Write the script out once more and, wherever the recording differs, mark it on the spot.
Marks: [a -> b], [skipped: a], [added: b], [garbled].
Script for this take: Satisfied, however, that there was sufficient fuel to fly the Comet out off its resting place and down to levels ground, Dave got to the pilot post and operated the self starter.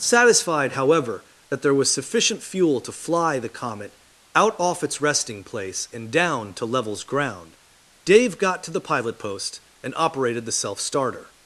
Satisfied, however, that there was sufficient fuel to fly the Comet out off its resting place and down to levels ground, Dave got to the pilot post and operated the self starter.